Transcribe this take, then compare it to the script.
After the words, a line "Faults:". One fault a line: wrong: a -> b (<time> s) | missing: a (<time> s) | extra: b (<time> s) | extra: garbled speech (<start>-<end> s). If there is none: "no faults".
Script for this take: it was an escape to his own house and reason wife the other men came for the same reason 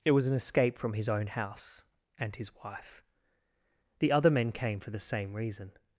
it was an escape from his own house and his wife the other men came for the same reason
Faults:
wrong: to -> from (0.8 s)
wrong: reason -> his (2.4 s)